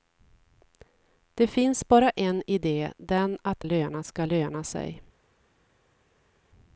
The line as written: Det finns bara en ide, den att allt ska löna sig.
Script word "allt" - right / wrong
wrong